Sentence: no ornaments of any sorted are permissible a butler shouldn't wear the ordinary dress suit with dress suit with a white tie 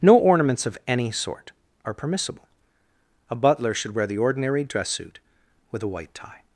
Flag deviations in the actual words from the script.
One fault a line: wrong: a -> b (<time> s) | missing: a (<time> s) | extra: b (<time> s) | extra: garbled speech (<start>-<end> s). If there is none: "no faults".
wrong: sorted -> sort (1.1 s)
wrong: shouldn't -> should (3.7 s)
missing: dress suit with (5.8 s)